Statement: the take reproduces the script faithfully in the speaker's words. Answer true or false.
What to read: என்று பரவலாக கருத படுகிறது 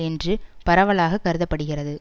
true